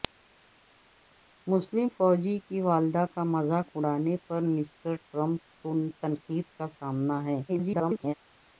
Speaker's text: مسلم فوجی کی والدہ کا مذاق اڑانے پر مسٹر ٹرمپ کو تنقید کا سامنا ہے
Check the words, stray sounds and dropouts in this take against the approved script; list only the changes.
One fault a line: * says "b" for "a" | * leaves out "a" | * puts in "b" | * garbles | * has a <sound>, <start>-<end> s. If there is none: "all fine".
* garbles